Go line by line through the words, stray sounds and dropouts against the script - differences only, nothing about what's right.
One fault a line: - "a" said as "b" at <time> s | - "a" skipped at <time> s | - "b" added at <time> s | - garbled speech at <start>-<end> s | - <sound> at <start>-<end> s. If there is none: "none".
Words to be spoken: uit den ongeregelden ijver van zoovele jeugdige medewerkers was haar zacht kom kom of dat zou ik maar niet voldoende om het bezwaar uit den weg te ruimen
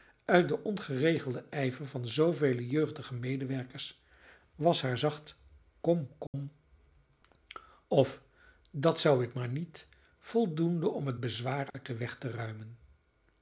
- dropout at 6.3-6.3 s
- dropout at 11.7-11.7 s